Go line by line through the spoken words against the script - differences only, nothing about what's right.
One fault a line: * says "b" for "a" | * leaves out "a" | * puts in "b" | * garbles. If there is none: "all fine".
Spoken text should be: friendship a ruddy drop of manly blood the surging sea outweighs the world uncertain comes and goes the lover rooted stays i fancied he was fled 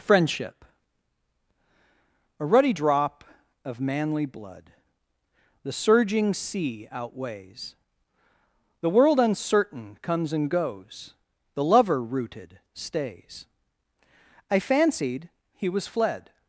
all fine